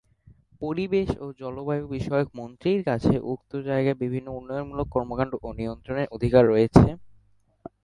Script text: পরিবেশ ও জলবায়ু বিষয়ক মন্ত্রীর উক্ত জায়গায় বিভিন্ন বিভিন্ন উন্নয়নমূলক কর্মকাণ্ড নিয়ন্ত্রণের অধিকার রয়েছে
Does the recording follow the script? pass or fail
fail